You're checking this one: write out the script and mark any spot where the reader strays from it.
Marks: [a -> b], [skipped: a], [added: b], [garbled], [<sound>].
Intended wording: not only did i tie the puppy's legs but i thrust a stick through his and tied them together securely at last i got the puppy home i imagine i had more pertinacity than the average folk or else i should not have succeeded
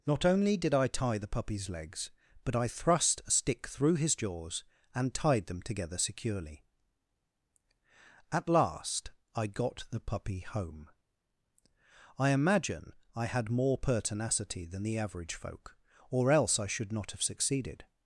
not only did i tie the puppy's legs but i thrust a stick through his [added: jaws] and tied them together securely at last i got the puppy home i imagine i had more pertinacity than the average folk or else i should not have succeeded